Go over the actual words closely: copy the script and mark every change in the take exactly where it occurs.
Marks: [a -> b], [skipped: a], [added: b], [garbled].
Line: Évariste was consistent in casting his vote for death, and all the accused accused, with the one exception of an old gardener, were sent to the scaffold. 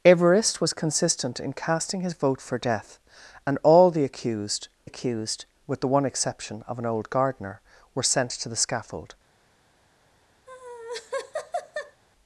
Évariste was consistent in casting his vote for death, and all the accused accused, with the one exception of an old gardener, were sent to the scaffold.